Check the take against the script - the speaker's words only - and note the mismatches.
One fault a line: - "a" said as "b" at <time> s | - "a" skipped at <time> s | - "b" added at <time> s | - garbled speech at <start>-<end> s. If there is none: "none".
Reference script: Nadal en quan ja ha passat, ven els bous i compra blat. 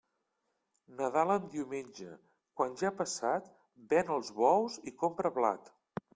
- "diumenge" added at 1.6 s